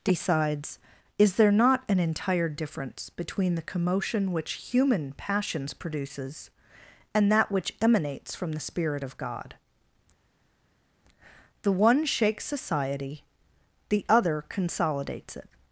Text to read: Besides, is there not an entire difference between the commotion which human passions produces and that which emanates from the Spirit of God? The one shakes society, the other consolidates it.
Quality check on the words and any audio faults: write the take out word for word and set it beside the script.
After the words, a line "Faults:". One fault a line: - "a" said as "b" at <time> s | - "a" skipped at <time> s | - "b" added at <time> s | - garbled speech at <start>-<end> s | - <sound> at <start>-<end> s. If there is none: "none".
Decides, is there not an entire difference between the commotion which human passions produces and that which emanates from the Spirit of God? The one shakes society, the other consolidates it.
Faults:
- "Besides" said as "Decides" at 0.0 s